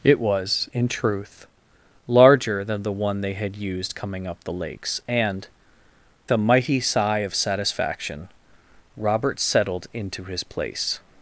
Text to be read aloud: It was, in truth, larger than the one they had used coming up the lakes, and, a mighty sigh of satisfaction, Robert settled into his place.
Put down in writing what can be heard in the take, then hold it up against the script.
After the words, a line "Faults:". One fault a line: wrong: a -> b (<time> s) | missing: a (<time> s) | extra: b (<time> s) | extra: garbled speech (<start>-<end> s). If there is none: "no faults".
It was, in truth, larger than the one they had used coming up the lakes, and, a mighty sigh of satisfaction, Robert settled into his place.
Faults:
no faults